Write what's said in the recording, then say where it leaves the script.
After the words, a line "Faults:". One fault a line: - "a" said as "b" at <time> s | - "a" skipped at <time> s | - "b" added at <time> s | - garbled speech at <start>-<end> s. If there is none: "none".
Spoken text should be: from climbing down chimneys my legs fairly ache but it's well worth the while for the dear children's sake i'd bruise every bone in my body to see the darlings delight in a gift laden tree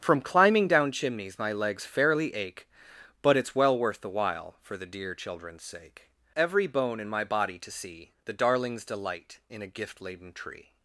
from climbing down chimneys my legs fairly ache but it's well worth the while for the dear children's sake every bone in my body to see the darlings delight in a gift laden tree
Faults:
- "i'd bruise" skipped at 6.1 s